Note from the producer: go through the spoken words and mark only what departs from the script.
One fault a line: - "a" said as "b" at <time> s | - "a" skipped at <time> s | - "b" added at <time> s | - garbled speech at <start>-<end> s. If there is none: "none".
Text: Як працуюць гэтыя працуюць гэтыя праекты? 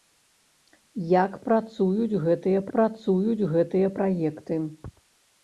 none